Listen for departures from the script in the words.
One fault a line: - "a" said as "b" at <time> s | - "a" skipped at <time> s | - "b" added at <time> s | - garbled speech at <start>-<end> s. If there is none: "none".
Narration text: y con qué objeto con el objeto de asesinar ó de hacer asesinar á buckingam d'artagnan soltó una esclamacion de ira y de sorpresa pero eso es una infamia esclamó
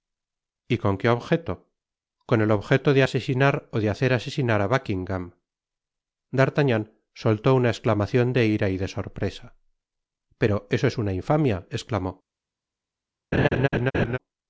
none